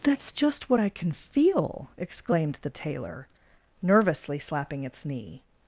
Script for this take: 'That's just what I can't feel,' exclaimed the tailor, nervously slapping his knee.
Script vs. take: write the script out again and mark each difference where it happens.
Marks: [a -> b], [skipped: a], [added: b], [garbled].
'That's just what I [can't -> can] feel,' exclaimed the tailor, nervously slapping [his -> its] knee.